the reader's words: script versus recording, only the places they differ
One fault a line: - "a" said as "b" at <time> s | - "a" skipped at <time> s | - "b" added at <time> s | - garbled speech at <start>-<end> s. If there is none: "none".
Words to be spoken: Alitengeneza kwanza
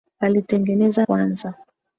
none